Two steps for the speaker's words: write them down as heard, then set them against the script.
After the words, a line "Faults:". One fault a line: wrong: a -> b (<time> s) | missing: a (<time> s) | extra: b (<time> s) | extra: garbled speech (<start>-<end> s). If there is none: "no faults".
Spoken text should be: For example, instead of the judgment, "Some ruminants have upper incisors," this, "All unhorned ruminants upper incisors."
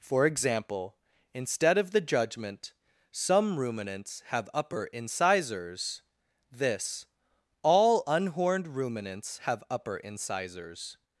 For example, instead of the judgment, "Some ruminants have upper incisors," this, "All unhorned ruminants have upper incisors."
Faults:
extra: have (9.4 s)